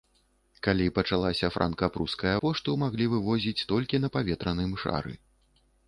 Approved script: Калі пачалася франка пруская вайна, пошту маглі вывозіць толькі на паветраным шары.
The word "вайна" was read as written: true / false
false